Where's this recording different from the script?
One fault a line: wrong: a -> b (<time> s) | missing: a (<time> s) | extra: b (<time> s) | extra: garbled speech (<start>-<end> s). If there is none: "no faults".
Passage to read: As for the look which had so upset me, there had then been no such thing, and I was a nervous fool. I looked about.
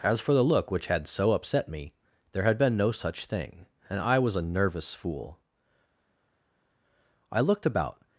missing: then (2.6 s)